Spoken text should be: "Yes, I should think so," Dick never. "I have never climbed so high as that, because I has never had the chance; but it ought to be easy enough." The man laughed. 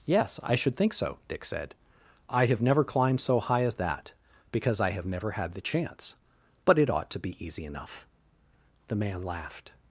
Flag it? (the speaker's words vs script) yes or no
yes